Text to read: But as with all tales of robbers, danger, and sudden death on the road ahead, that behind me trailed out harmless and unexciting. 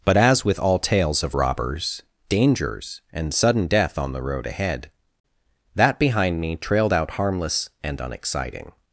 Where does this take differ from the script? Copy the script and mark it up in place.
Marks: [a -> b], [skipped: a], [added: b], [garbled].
But as with all tales of robbers, [danger, -> dangers] and sudden death on the road ahead, that behind me trailed out harmless and unexciting.